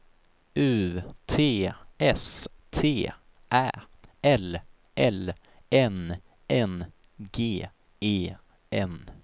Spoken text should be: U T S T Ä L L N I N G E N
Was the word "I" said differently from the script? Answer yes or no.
yes